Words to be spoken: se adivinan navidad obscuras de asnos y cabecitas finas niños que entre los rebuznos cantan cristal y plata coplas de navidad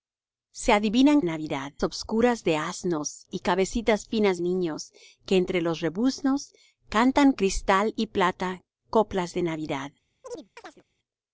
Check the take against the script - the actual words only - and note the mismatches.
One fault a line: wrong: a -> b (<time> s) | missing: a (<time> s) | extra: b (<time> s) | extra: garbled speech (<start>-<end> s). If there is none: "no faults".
no faults